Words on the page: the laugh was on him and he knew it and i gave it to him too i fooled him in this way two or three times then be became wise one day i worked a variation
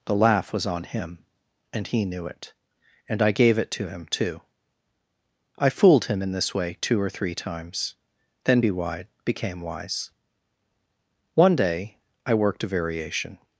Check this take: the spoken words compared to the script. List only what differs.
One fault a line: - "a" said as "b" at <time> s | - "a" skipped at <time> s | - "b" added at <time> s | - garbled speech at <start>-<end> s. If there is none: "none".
- "wide" added at 8.7 s